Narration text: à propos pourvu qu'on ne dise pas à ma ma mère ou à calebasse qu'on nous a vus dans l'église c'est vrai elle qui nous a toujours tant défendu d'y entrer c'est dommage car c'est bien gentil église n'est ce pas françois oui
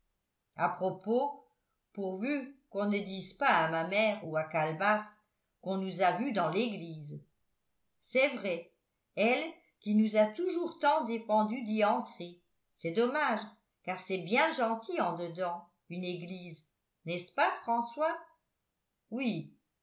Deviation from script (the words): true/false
true